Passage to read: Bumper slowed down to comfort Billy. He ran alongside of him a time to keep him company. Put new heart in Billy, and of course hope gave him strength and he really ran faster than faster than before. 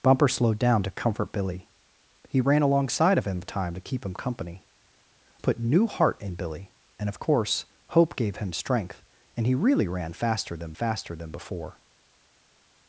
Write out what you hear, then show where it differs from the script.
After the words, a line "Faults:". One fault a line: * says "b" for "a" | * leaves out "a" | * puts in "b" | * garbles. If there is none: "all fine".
Bumper slowed down to comfort Billy. He ran alongside of him a time to keep him company. Put new heart in Billy, and of course hope gave him strength and he really ran faster than faster than before.
Faults:
all fine